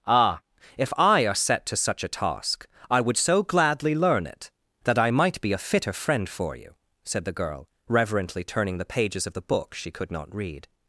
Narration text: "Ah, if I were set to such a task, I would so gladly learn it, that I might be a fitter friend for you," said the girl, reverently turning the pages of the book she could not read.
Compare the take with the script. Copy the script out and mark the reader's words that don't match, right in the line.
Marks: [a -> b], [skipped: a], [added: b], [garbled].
"Ah, if I [were -> are] set to such a task, I would so gladly learn it, that I might be a fitter friend for you," said the girl, reverently turning the pages of the book she could not read.